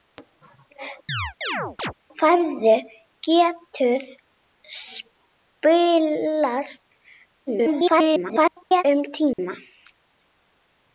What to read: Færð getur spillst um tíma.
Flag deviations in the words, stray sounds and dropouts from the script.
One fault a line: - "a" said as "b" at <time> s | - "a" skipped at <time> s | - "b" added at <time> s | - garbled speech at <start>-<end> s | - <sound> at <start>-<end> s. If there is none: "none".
- chirp at 1.1-1.9 s
- garbled speech at 7.5-8.8 s
- dropout at 9.3-9.4 s